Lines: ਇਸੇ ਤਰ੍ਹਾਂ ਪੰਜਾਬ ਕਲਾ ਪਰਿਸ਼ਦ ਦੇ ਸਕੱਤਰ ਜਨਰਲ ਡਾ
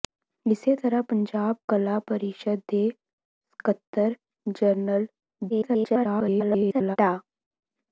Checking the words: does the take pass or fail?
fail